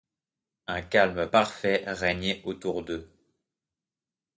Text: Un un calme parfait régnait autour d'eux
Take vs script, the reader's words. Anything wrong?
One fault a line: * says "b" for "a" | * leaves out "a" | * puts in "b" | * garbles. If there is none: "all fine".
* leaves out "un"